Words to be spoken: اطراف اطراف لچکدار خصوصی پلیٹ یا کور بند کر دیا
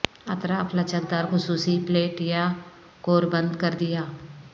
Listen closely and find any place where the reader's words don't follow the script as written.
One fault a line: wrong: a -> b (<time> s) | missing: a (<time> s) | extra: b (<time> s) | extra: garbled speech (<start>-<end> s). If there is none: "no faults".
missing: اطراف (0.8 s)